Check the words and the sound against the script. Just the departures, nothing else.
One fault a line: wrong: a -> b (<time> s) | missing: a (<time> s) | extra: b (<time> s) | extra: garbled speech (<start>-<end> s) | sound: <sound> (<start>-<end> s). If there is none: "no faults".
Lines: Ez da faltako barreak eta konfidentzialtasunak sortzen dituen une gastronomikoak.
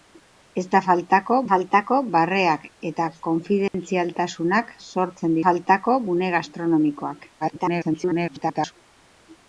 extra: faltako (1.5 s)
sound: dropout (3.7-3.7 s)
wrong: dituen -> faltako (5.4 s)
extra: garbled speech (7.4-8.7 s)